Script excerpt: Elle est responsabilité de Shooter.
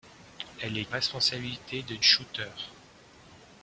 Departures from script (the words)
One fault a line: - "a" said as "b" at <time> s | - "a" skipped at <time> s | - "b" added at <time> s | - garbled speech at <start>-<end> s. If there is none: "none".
none